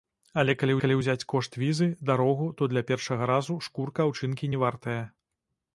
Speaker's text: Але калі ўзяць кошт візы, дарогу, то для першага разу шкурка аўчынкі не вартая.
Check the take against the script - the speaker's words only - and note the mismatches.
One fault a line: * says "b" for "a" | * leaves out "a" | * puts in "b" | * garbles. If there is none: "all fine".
* puts in "калі"